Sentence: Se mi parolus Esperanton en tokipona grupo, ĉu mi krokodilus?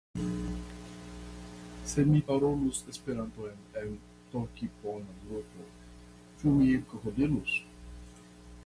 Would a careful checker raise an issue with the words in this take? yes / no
no